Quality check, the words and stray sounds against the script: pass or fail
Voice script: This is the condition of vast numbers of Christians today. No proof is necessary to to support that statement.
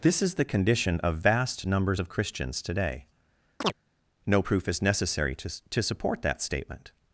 fail